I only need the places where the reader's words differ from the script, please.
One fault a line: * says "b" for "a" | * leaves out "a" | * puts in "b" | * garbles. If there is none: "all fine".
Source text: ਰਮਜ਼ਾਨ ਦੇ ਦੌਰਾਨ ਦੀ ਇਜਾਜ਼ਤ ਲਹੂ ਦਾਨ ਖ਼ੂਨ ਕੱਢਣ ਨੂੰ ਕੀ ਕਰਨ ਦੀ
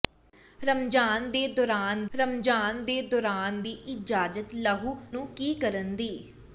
* puts in "ਰਮਜ਼ਾਨ ਦੇ ਦੌਰਾਨ"
* leaves out "ਦਾਨ ਖ਼ੂਨ ਕੱਢਣ"